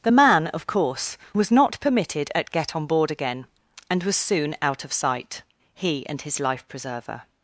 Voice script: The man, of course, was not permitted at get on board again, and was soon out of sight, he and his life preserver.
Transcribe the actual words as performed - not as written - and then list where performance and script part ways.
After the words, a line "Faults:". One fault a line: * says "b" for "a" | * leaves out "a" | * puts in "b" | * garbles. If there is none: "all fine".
The man, of course, was not permitted at get on board again, and was soon out of sight, he and his life preserver.
Faults:
all fine